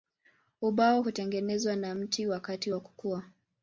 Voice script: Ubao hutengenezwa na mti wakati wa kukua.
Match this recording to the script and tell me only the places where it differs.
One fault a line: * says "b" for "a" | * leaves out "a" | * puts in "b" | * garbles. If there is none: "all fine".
all fine